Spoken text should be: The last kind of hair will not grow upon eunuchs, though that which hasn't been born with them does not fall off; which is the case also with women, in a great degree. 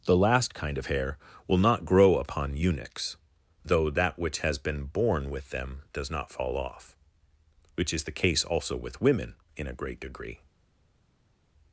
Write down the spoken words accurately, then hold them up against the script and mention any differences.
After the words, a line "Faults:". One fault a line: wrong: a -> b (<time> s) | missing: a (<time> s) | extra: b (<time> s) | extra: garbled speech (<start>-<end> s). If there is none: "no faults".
The last kind of hair will not grow upon eunuchs, though that which has been born with them does not fall off; which is the case also with women, in a great degree.
Faults:
wrong: hasn't -> has (4.4 s)